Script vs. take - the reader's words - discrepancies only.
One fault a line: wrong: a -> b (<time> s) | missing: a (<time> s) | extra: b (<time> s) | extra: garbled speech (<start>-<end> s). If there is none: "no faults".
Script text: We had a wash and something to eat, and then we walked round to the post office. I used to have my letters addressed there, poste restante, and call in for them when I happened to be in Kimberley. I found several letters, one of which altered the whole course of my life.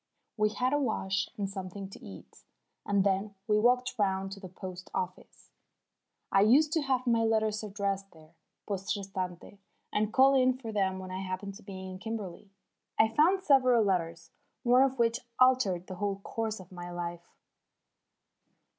no faults